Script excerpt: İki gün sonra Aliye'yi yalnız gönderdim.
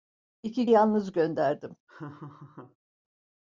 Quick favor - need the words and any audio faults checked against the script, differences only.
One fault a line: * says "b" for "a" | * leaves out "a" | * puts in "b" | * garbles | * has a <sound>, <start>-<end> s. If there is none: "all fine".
* leaves out "gün sonra Aliye'yi"
* has a laugh, 1.9-2.8 s